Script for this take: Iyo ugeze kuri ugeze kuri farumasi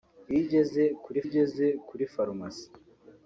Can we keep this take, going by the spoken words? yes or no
yes